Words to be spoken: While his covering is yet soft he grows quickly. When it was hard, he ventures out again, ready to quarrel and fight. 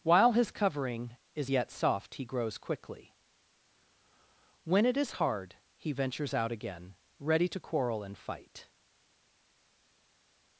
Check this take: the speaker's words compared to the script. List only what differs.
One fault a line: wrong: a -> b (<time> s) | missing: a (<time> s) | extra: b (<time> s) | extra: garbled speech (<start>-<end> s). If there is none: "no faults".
wrong: was -> is (5.0 s)